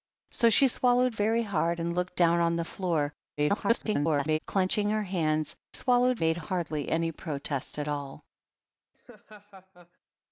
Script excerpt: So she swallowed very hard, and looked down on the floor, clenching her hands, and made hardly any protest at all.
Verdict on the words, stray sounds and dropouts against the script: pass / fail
fail